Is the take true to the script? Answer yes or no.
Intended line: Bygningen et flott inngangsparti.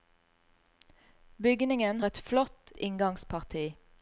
yes